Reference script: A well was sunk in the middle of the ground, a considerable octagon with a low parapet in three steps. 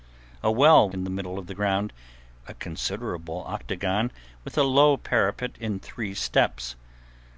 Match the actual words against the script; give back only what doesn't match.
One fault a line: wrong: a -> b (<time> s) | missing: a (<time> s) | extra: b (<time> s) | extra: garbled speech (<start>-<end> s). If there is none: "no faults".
missing: was sunk (0.9 s)